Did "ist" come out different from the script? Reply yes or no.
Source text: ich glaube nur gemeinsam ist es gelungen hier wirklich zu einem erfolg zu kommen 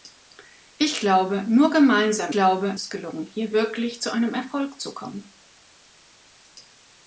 yes